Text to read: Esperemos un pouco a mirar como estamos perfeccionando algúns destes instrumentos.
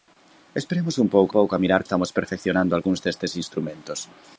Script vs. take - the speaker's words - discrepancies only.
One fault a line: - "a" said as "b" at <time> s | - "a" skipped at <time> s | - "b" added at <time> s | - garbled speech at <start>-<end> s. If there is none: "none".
- "pouco" added at 1.4 s
- "como" skipped at 1.8 s